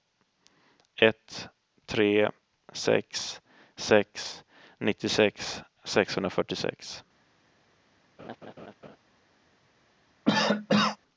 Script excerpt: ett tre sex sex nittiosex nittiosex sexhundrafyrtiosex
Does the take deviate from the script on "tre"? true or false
false